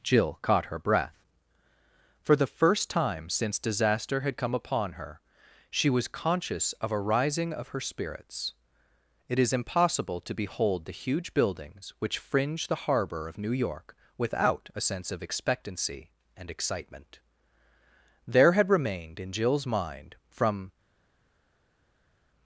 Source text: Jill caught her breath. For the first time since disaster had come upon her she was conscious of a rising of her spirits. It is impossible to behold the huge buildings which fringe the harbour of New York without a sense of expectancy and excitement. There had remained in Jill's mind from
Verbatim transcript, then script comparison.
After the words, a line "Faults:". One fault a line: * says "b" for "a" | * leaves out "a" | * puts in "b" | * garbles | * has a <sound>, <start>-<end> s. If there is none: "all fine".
Jill caught her breath. For the first time since disaster had come upon her she was conscious of a rising of her spirits. It is impossible to behold the huge buildings which fringe the harbour of New York without a sense of expectancy and excitement. There had remained in Jill's mind from
Faults:
all fine